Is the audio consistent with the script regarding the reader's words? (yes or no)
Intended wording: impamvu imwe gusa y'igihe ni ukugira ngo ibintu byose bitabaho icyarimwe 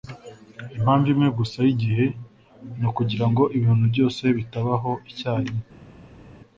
yes